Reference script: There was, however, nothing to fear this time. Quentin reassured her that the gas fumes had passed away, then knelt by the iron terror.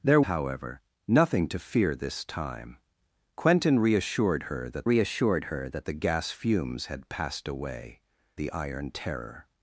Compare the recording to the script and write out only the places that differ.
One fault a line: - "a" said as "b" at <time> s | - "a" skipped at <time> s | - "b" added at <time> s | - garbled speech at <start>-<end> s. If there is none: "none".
- "was" skipped at 0.2 s
- "reassured her that" added at 4.8 s
- "then knelt by" skipped at 8.0 s